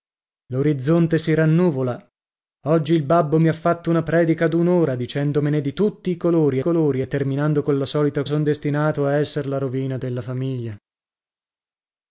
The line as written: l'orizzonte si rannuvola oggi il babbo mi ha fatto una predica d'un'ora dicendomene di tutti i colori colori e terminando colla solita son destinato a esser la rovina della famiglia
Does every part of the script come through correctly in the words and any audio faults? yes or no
yes